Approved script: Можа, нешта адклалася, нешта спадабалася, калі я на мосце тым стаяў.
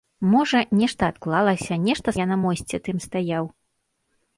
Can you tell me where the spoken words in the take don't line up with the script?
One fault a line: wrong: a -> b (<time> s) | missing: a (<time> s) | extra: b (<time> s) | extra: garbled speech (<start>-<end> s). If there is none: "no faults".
missing: спадабалася калі (2.1 s)